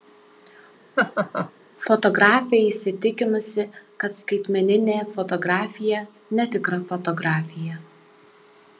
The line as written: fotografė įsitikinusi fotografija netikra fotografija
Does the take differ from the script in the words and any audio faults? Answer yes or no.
yes